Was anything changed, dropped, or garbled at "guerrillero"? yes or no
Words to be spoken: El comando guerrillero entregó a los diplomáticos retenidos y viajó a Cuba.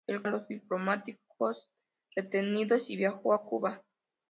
yes